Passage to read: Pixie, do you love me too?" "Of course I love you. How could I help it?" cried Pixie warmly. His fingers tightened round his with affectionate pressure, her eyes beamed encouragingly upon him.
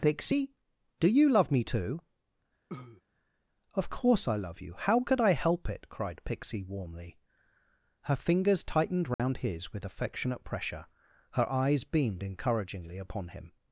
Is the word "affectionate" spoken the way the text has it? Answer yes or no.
yes